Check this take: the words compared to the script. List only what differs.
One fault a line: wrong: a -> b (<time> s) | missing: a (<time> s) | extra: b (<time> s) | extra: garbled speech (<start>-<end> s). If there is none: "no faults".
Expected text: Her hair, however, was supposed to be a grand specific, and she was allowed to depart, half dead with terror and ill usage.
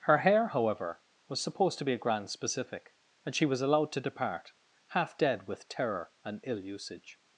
no faults